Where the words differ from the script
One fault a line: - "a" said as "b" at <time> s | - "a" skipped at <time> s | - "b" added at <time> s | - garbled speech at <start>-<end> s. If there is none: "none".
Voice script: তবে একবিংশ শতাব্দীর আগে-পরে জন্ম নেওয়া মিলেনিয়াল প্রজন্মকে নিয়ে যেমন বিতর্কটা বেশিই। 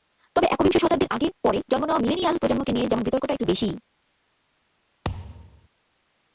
- "একটু" added at 3.3 s